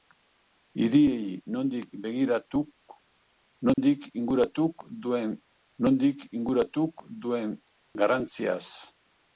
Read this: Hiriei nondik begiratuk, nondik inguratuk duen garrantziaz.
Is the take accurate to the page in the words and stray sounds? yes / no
no